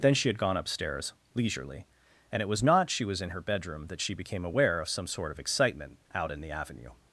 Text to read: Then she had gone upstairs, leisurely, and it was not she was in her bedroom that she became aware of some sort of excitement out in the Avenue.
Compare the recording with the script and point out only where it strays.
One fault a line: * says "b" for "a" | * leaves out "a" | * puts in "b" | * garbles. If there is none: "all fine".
all fine